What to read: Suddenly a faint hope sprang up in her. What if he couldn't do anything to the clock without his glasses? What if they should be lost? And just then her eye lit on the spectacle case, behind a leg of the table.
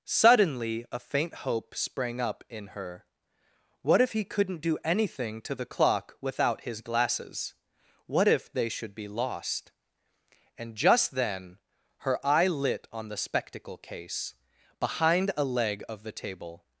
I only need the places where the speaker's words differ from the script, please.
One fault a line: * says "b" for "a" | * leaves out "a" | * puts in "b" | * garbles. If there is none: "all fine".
all fine